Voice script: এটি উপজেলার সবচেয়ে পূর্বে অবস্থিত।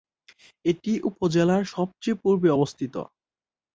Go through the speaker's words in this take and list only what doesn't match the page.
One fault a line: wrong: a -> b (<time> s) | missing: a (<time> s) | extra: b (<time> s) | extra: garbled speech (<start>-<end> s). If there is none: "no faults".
no faults